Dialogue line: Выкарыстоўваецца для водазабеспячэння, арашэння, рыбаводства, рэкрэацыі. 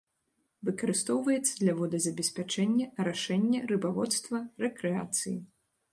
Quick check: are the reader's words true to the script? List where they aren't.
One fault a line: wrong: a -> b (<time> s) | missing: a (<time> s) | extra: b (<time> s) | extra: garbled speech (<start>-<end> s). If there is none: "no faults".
no faults